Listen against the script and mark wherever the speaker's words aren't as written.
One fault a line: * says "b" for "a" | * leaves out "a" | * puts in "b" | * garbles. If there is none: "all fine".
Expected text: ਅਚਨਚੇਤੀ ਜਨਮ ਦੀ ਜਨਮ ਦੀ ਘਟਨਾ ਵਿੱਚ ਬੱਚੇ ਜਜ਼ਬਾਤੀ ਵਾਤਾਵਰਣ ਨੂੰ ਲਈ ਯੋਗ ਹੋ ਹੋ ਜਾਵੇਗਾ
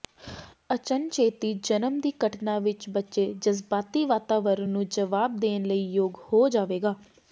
* leaves out "ਜਨਮ ਦੀ"
* puts in "ਜਵਾਬ ਦੇਣ"
* leaves out "ਹੋ"